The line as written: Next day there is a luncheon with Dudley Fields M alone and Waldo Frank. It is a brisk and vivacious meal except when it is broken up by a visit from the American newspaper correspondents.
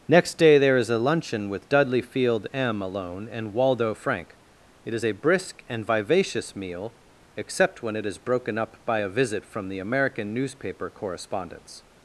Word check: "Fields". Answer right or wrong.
wrong